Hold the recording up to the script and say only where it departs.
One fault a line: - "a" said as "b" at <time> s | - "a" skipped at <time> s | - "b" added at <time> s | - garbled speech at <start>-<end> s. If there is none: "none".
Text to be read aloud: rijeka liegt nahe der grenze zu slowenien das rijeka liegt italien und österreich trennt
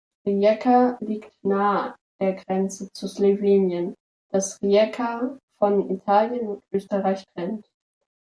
- "liegt" said as "von" at 5.6 s